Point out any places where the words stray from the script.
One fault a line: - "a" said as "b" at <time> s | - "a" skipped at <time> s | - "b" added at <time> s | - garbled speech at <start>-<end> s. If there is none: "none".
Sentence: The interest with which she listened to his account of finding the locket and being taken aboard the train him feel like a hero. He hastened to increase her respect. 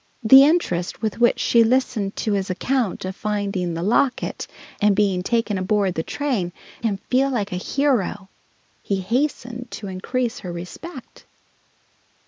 none